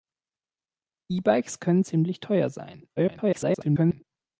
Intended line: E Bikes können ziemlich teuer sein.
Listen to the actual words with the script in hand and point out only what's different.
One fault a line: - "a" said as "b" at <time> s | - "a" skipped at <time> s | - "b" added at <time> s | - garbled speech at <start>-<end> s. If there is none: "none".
- garbled speech at 3.0-4.0 s